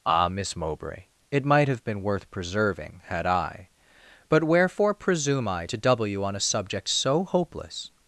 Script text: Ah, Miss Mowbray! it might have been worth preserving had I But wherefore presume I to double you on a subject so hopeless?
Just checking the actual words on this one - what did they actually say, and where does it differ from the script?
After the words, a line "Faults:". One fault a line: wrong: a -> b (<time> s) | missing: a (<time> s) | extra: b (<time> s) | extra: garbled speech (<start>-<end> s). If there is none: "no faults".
Ah, Miss Mowbray! it might have been worth preserving had I But wherefore presume I to double you on a subject so hopeless?
Faults:
no faults